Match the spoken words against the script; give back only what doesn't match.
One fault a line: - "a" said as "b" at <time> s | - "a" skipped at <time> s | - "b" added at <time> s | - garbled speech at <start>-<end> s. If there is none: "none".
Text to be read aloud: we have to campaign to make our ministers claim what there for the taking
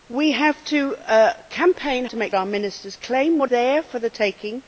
none